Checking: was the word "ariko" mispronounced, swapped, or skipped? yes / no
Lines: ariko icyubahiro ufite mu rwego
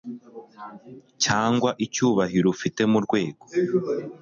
yes